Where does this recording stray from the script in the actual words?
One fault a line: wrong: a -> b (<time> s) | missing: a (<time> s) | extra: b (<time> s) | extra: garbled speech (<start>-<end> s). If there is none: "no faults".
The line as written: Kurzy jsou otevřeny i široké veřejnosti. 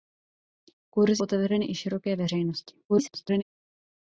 missing: jsou (1.2 s)
extra: garbled speech (2.9-3.4 s)